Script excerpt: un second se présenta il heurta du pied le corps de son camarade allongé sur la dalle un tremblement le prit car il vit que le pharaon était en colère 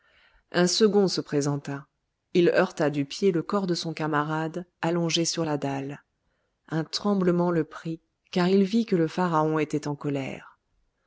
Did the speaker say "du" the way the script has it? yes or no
yes